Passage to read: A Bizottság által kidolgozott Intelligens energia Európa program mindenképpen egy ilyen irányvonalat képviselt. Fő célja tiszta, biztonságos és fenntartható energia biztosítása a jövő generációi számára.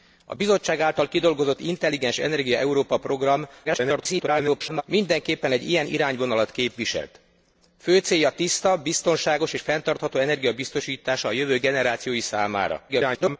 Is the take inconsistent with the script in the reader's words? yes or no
yes